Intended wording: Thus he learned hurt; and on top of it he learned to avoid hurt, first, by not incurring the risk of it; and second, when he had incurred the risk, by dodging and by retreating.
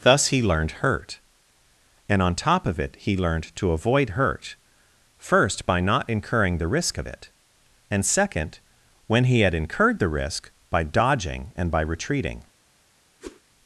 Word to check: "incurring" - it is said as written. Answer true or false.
true